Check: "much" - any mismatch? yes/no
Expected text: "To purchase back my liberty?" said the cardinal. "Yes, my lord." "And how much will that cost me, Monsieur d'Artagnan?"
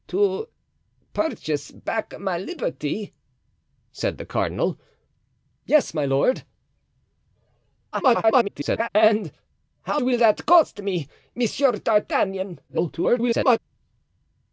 yes